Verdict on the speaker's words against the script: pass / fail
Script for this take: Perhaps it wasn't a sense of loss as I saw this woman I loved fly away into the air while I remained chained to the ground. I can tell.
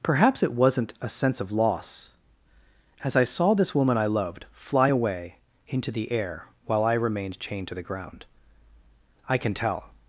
pass